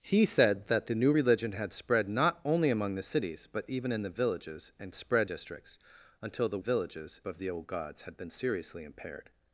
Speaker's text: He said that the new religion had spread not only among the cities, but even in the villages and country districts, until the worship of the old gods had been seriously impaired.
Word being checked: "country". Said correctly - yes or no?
no